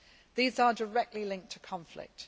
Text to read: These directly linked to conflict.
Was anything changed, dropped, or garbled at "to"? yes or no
no